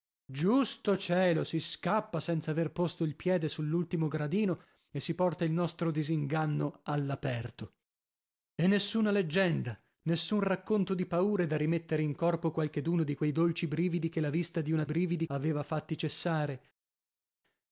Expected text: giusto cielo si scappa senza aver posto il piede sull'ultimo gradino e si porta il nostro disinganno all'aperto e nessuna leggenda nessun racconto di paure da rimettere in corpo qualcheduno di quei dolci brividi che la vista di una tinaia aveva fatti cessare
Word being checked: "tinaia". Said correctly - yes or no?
no